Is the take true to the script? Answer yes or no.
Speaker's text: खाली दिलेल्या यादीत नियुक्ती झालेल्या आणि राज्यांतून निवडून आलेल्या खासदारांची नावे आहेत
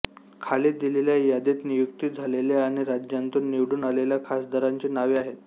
yes